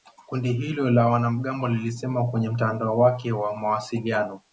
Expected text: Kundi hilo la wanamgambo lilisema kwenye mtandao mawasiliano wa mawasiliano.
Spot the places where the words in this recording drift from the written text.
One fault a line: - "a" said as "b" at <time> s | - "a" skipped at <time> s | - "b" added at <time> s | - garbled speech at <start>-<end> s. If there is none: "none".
- "mawasiliano" said as "wake" at 3.0 s